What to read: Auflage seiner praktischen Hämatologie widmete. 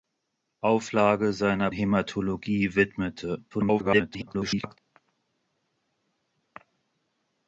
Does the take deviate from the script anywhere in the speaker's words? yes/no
yes